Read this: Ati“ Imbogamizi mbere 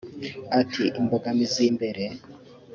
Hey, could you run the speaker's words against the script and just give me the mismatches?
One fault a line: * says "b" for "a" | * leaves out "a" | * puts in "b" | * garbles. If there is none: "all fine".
all fine